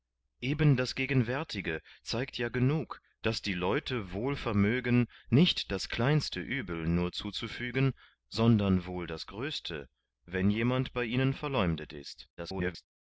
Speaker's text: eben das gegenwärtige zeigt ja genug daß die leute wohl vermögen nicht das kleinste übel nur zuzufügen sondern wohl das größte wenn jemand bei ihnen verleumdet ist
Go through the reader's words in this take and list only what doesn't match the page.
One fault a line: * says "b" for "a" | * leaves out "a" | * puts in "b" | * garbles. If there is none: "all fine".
* garbles